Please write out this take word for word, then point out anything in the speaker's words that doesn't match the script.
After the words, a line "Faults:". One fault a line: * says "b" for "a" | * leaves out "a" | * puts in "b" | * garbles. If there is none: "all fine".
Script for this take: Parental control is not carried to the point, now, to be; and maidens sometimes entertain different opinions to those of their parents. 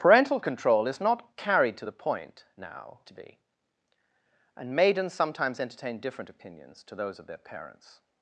Parental control is not carried to the point, now, to be; and maidens sometimes entertain different opinions to those of their parents.
Faults:
all fine